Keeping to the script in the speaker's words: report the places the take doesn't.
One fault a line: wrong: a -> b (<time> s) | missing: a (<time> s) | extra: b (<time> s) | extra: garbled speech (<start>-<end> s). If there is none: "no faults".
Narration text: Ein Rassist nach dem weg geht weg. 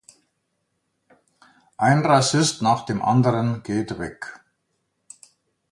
wrong: weg -> anderen (3.0 s)